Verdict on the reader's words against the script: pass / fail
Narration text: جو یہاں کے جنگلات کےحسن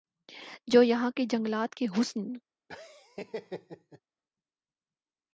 pass